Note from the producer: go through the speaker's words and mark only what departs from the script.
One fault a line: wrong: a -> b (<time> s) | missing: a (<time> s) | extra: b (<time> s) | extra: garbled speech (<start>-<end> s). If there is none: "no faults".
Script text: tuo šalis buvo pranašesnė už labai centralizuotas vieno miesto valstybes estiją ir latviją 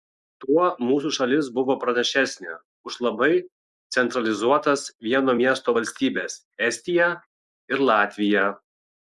extra: mūsų (0.8 s)